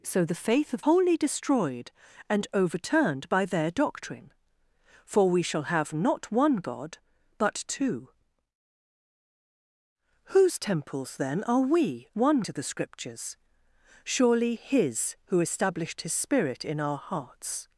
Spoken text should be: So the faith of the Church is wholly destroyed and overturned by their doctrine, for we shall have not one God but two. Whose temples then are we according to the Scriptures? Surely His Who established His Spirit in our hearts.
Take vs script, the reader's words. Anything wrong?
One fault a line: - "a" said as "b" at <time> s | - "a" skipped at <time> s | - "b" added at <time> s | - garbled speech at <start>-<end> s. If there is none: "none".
- "the Church is" skipped at 0.8 s
- "according" said as "one" at 12.1 s